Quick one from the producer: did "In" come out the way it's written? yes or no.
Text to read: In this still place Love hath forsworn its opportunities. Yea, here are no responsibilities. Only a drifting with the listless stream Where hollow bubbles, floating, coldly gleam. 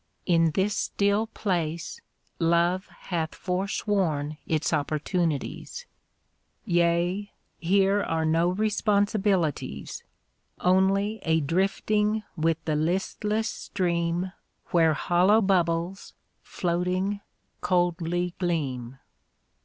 yes